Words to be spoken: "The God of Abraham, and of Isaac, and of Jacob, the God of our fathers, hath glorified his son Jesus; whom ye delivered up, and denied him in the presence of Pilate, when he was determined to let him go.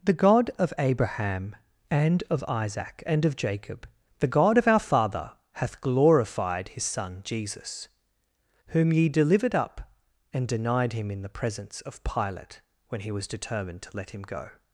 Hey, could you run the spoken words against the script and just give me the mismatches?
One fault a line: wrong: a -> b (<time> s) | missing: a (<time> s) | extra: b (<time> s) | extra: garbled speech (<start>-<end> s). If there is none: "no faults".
wrong: fathers -> father (4.8 s)